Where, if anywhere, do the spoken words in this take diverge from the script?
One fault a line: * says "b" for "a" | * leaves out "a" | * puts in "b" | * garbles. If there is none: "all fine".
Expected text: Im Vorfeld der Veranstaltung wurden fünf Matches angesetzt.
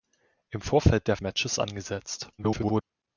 * leaves out "Veranstaltung wurden fünf"
* garbles